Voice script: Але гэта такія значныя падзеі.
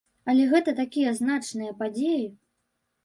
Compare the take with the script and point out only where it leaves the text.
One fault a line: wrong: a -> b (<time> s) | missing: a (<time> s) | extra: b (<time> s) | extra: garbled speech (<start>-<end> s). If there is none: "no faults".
no faults